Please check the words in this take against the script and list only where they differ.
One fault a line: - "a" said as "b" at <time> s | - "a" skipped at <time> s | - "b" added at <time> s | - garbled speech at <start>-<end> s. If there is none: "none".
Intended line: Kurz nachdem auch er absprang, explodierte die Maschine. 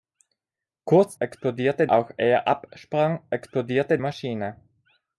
- "nachdem" said as "explodierte" at 1.2 s
- "die" skipped at 4.0 s